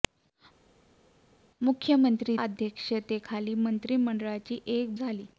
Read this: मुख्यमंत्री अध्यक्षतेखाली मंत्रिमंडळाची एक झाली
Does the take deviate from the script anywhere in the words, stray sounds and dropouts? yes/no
no